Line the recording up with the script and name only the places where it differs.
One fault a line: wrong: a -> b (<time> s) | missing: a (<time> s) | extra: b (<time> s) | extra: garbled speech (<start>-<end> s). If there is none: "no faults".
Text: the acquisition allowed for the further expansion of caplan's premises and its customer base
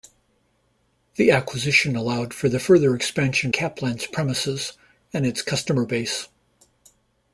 missing: of (3.5 s)